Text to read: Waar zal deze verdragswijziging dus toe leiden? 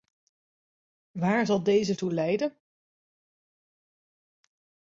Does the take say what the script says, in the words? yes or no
no